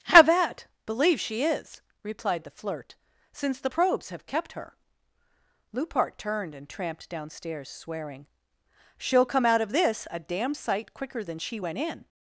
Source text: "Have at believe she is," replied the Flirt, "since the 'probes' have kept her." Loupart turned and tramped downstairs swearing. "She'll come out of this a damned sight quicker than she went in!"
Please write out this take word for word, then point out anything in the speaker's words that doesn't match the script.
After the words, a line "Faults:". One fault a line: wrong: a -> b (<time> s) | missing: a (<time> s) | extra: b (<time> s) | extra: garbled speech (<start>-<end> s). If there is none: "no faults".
"Have at believe she is," replied the Flirt, "since the 'probes' have kept her." Loupart turned and tramped downstairs swearing. "She'll come out of this a damned sight quicker than she went in!"
Faults:
no faults